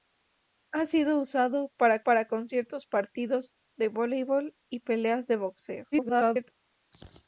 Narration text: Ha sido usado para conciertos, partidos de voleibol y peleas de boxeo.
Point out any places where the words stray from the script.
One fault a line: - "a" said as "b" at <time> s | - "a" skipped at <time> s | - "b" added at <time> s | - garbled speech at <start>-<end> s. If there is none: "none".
- "para" added at 2.0 s
- garbled speech at 5.9-6.5 s